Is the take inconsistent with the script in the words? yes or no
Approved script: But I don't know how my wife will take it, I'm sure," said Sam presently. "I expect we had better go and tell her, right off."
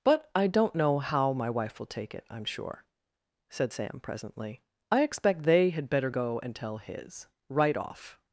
yes